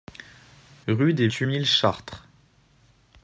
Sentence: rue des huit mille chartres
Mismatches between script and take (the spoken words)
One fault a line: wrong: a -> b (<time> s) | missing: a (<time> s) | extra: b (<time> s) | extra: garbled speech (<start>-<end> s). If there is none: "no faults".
no faults